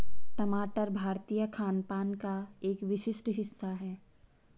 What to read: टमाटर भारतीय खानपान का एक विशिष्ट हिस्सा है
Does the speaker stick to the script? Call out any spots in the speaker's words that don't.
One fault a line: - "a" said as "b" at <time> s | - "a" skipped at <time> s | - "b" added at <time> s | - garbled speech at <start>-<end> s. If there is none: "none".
none